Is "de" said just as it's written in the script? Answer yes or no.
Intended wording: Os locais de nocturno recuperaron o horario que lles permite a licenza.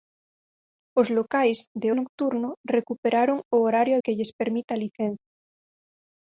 yes